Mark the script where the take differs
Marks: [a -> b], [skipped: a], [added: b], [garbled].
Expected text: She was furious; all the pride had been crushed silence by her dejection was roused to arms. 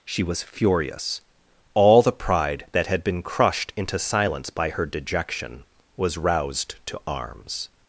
She was furious; all the pride [added: that] had been crushed [added: into] silence by her dejection was roused to arms.